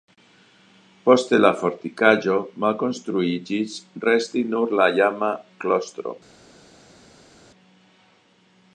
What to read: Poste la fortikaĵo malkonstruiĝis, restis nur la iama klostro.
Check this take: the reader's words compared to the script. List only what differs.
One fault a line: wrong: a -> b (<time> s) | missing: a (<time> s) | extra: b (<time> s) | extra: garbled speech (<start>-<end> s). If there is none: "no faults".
no faults